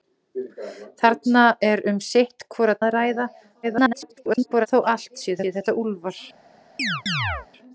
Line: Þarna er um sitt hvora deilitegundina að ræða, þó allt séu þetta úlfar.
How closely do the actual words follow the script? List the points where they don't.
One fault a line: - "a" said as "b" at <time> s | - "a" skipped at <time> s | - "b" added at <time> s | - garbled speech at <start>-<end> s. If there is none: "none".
- "deilitegundina" skipped at 2.8 s
- garbled speech at 3.6-4.7 s
- "séu" added at 5.4 s